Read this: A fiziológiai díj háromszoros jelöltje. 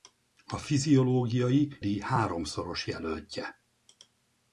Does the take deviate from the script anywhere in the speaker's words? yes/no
no